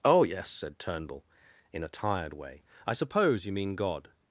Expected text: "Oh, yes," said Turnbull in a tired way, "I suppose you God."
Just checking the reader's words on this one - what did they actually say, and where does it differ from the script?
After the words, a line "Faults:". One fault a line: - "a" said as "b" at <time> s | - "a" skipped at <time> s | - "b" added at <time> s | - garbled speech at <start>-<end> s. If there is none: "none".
"Oh, yes," said Turnbull in a tired way, "I suppose you mean God."
Faults:
- "mean" added at 3.5 s